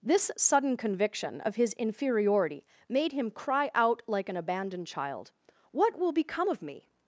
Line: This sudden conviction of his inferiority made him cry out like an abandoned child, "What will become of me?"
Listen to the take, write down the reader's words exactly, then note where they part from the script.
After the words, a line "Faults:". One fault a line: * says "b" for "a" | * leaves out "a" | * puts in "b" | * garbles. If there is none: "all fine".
This sudden conviction of his inferiority made him cry out like an abandoned child, "What will become of me?"
Faults:
all fine